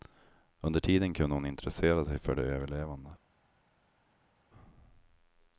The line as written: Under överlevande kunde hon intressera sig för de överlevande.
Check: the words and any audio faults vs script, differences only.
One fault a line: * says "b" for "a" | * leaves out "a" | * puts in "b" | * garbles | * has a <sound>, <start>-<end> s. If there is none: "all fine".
* says "tiden" for "överlevande"